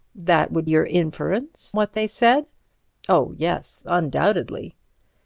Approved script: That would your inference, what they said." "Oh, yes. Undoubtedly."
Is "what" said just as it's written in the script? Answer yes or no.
yes